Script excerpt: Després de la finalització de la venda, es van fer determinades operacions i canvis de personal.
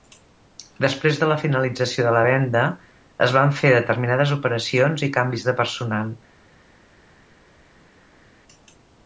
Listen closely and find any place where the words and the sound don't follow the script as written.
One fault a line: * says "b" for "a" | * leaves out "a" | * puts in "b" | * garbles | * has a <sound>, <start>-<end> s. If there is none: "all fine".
all fine